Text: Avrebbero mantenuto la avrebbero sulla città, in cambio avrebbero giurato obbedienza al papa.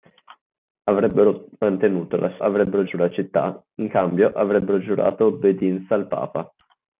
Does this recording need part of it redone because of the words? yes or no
no